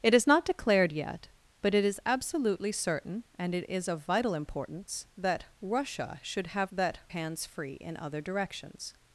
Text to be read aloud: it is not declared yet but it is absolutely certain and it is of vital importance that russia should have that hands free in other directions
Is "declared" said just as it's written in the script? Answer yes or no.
yes